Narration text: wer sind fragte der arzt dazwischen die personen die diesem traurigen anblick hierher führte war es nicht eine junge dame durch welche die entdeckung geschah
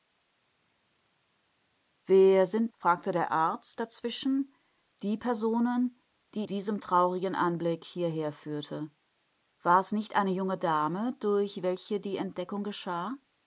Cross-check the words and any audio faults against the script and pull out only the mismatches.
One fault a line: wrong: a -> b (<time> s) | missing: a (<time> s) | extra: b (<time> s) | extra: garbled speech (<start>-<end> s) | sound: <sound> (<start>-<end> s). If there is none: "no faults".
no faults